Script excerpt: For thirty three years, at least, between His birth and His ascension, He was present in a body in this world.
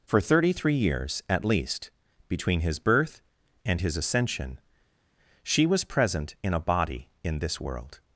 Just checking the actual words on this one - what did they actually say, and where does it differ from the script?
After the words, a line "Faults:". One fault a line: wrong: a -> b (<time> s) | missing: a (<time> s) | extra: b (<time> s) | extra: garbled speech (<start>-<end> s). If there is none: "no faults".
For thirty three years, at least, between His birth and His ascension, She was present in a body in this world.
Faults:
wrong: He -> She (5.4 s)